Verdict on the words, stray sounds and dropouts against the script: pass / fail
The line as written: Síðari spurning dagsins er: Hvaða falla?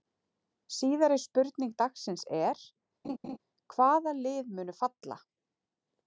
fail